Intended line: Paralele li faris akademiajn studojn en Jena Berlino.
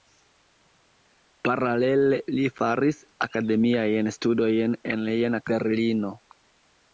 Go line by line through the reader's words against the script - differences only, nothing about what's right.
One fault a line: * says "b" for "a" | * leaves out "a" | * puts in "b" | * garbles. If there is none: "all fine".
all fine